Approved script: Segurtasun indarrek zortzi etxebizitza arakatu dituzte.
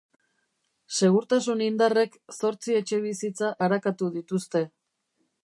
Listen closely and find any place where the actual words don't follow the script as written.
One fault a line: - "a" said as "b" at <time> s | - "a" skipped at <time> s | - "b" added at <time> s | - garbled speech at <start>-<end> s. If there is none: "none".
none